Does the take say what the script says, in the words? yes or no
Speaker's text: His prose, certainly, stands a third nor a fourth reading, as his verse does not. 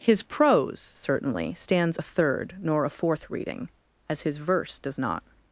yes